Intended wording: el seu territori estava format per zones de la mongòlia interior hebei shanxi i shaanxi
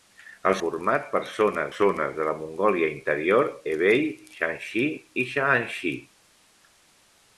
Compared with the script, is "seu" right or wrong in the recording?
wrong